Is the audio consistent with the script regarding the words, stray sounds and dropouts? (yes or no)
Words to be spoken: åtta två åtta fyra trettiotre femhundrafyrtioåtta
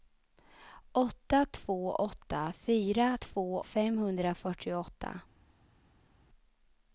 no